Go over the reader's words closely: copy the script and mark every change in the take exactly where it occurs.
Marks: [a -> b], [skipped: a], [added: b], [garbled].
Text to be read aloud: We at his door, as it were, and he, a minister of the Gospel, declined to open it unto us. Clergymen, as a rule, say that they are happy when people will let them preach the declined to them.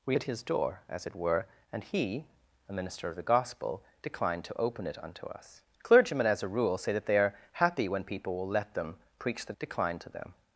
We at his door, as it were, and he, a minister of the Gospel, declined to open it unto us. Clergymen, as a rule, say that they are happy when people will let them preach the declined to them.